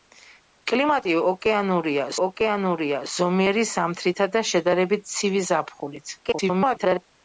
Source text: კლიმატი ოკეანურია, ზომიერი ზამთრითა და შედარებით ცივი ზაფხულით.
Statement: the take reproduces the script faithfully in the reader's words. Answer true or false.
false